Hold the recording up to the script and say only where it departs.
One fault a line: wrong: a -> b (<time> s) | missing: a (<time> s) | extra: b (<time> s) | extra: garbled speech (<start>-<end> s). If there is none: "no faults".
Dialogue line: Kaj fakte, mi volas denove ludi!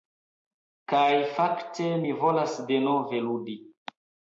no faults